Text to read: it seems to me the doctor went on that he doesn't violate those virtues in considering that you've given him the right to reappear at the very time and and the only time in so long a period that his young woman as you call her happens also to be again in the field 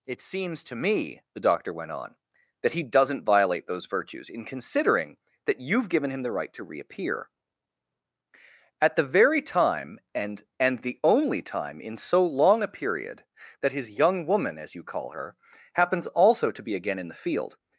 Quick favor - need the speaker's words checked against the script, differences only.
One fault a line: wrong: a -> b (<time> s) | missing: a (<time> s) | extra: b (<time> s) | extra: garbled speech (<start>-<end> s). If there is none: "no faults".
no faults